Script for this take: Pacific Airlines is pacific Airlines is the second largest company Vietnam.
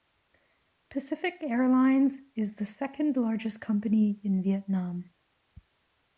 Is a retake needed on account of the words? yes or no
yes